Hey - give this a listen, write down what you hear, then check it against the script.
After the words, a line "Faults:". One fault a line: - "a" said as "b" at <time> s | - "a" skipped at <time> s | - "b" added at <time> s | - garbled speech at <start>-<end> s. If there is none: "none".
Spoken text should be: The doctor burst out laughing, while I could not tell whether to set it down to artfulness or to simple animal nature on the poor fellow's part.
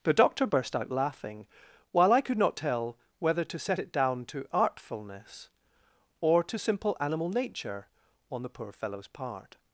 The doctor burst out laughing, while I could not tell whether to set it down to artfulness or to simple animal nature on the poor fellow's part.
Faults:
none